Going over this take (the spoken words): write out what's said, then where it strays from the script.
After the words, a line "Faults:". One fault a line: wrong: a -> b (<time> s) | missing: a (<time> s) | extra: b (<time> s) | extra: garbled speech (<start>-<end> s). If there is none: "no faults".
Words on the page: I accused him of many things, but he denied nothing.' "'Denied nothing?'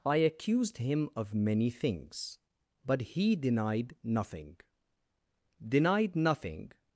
I accused him of many things, but he denied nothing.' "'Denied nothing?'
Faults:
no faults